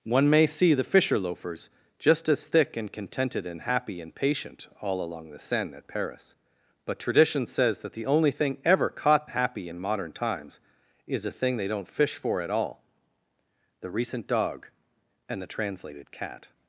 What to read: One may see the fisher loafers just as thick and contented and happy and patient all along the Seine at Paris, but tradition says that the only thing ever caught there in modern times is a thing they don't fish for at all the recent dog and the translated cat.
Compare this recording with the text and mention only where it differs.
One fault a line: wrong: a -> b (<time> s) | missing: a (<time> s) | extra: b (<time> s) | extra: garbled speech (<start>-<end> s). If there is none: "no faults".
wrong: there -> happy (9.3 s)